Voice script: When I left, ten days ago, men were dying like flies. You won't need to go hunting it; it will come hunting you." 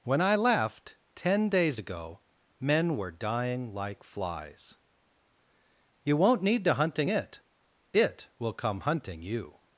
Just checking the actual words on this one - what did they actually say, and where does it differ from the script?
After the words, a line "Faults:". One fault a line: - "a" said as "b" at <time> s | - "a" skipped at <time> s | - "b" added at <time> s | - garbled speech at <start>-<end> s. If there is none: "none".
When I left, ten days ago, men were dying like flies. You won't need to hunting it; it will come hunting you."
Faults:
- "go" skipped at 6.7 s